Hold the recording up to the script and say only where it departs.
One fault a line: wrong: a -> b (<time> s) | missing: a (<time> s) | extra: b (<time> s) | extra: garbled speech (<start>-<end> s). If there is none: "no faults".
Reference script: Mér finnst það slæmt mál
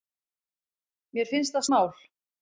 missing: slæmt (1.7 s)